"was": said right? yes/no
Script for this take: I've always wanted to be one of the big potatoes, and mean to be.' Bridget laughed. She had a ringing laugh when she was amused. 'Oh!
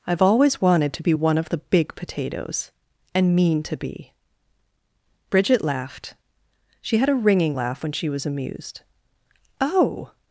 yes